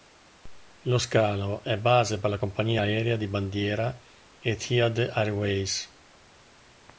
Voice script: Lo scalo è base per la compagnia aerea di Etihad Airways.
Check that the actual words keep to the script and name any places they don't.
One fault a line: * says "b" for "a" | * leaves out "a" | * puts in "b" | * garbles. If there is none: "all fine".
* puts in "bandiera"